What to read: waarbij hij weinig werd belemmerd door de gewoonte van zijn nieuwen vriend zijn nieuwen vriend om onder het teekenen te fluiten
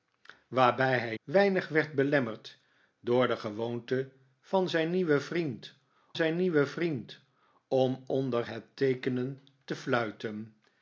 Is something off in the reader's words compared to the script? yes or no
no